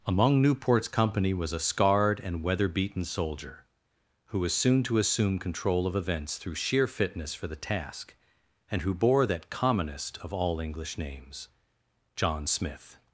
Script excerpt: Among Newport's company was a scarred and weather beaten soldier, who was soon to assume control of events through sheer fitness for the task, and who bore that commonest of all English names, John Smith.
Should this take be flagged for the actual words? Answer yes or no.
no